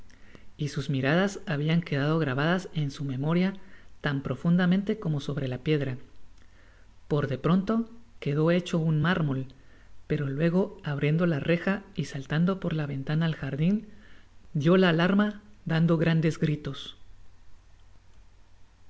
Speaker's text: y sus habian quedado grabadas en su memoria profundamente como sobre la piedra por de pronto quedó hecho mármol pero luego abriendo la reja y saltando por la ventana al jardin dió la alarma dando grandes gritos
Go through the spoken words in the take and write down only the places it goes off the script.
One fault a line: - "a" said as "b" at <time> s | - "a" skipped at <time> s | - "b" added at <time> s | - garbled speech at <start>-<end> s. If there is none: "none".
- "miradas" added at 0.9 s
- "tan" added at 4.0 s
- "un" added at 8.8 s